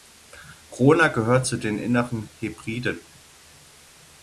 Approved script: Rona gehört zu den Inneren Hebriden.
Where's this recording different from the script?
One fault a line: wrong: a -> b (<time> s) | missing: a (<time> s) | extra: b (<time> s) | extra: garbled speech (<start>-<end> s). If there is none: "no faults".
no faults